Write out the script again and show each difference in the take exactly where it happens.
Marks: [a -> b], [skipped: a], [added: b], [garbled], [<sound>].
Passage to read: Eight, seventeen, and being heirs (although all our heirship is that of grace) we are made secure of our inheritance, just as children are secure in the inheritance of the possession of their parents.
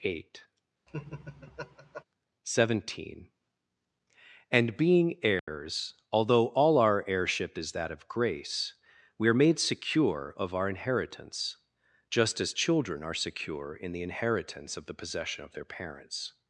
Eight, [laugh] seventeen, and being heirs [dropout] (although all our heirship is that of grace) we are made secure of our inheritance, just as children are secure in the inheritance of the possession of their parents.